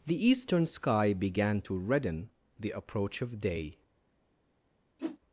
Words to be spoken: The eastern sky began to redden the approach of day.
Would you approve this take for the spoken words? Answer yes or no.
yes